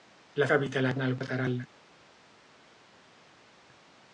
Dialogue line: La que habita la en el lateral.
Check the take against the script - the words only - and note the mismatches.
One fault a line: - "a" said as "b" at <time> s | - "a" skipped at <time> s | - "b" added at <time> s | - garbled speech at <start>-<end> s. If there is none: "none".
none